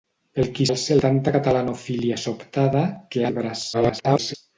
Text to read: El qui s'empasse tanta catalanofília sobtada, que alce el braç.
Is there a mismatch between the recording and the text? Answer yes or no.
yes